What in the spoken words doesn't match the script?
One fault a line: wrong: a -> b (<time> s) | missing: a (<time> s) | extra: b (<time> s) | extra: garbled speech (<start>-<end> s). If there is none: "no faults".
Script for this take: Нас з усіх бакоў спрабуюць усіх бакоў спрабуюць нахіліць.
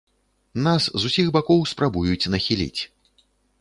missing: усіх бакоў спрабуюць (2.3 s)